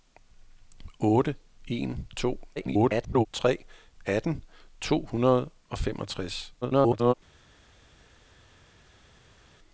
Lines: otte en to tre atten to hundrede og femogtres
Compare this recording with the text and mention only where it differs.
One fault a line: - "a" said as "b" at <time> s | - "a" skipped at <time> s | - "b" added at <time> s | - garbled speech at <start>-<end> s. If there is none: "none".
- garbled speech at 2.6-3.3 s
- garbled speech at 6.6-7.1 s